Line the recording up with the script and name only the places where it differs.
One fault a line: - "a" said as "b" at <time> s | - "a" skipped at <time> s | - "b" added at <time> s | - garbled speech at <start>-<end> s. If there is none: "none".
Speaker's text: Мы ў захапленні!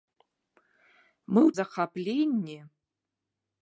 none